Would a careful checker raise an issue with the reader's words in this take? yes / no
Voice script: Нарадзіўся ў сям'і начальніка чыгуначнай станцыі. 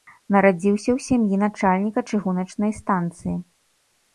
no